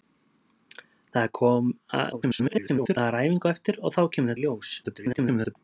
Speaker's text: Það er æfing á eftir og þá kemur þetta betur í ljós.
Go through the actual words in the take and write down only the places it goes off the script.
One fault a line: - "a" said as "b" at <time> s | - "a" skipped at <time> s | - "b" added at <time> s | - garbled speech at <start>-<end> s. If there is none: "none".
- garbled speech at 2.1-3.0 s
- "þetta betur" skipped at 4.3 s
- garbled speech at 4.8-5.6 s